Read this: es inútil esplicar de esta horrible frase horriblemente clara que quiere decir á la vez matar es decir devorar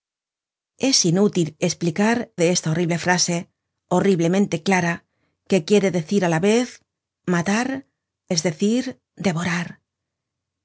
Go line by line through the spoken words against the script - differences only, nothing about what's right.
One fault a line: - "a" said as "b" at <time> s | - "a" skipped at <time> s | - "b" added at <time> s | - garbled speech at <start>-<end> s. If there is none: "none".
none